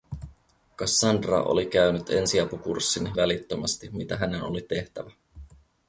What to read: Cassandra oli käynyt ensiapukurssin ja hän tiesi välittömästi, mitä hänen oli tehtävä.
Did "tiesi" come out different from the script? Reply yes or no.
yes